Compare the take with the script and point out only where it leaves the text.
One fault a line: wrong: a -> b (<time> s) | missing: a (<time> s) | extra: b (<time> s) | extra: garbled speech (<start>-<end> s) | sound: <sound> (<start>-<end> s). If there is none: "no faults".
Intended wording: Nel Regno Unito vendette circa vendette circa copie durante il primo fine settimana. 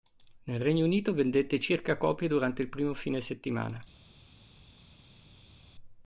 missing: vendette circa (1.9 s)